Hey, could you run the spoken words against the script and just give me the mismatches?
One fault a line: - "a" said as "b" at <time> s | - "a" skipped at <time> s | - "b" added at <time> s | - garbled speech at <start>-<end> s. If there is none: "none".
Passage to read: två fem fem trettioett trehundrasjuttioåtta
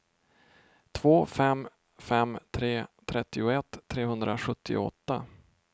- "tre" added at 2.5 s